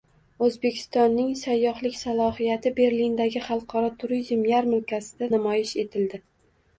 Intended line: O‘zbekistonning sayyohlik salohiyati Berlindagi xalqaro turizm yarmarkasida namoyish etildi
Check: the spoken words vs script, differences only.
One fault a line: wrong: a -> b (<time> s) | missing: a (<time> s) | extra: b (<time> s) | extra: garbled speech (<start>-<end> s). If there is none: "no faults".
no faults